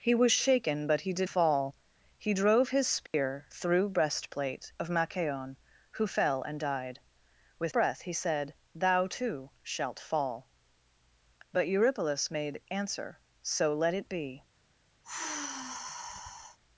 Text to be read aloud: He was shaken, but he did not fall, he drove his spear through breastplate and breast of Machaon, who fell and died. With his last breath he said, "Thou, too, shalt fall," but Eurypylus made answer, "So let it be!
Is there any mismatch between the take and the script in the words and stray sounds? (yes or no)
yes